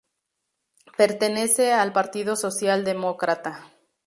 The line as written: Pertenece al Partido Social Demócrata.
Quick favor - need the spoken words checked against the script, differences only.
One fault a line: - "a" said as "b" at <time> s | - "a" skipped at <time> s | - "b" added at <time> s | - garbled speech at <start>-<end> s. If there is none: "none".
none